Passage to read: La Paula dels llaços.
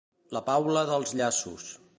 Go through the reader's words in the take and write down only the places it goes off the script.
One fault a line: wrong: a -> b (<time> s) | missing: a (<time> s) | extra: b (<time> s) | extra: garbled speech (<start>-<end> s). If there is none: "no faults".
no faults